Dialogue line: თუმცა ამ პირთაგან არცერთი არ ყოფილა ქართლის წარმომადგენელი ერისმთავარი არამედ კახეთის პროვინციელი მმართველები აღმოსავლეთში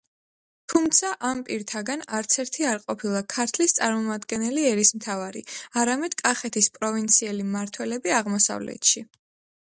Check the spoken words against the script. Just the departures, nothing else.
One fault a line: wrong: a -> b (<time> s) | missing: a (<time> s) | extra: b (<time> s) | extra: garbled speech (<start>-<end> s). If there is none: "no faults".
no faults